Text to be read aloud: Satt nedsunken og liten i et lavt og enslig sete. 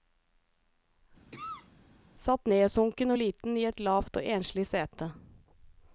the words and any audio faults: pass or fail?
fail